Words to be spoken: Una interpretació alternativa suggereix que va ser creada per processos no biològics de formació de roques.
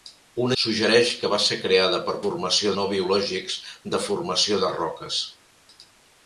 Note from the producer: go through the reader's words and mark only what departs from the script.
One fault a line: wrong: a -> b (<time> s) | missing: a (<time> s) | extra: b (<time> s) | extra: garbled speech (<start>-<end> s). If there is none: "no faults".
missing: interpretació alternativa (0.6 s)
wrong: processos -> formació (2.2 s)